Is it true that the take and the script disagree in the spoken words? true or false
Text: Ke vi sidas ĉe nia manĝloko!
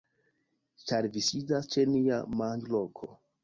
true